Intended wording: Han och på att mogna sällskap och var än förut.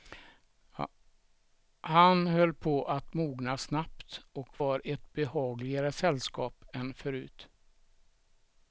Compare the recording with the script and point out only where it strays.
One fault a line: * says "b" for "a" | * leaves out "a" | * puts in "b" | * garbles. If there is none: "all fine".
* says "höll" for "och"
* says "snabbt" for "sällskap"
* puts in "ett behagligare sällskap"